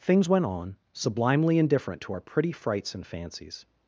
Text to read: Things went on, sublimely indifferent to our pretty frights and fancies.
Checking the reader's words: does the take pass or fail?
pass